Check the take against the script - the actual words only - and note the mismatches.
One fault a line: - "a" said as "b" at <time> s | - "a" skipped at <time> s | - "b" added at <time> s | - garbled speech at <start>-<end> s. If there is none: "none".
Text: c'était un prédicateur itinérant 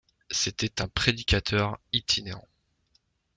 none